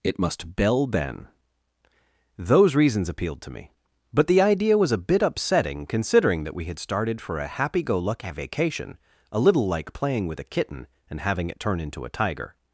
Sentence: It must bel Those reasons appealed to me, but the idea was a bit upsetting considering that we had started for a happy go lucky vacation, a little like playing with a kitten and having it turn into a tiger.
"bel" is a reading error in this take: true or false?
true